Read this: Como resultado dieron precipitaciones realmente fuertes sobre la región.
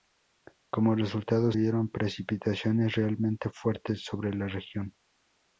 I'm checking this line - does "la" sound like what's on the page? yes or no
yes